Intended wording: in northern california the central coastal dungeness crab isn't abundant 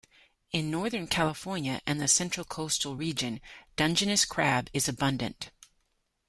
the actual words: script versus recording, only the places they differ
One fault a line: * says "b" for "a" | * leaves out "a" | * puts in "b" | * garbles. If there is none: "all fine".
* puts in "and"
* puts in "region"
* says "is" for "isn't"